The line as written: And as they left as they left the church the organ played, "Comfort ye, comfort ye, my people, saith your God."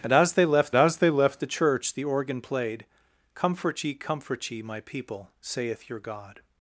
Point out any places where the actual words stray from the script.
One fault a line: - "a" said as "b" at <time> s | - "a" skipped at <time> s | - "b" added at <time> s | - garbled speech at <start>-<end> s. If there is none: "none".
none